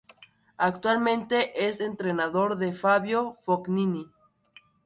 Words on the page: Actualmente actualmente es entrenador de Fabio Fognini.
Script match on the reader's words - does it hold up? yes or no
no